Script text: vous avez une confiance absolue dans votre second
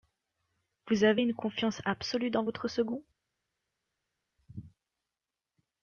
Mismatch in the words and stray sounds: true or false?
false